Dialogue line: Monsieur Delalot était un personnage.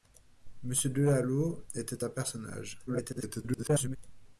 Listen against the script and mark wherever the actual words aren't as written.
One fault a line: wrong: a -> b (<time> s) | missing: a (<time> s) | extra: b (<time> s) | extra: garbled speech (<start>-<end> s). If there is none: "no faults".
extra: garbled speech (2.9-4.0 s)